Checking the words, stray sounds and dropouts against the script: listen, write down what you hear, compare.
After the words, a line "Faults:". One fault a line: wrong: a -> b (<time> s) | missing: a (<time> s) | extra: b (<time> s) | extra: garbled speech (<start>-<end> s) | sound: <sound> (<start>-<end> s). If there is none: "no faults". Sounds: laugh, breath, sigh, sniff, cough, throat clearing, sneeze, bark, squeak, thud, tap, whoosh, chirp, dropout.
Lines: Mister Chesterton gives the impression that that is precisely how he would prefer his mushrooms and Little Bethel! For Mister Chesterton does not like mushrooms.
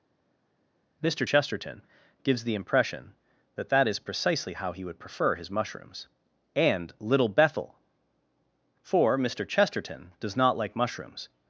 Mister Chesterton gives the impression that that is precisely how he would prefer his mushrooms and Little Bethel! For Mister Chesterton does not like mushrooms.
Faults:
no faults